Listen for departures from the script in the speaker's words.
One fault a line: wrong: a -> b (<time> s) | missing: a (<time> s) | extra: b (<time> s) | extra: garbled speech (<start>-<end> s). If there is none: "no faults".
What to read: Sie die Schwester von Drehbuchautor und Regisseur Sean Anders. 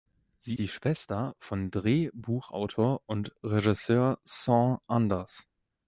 no faults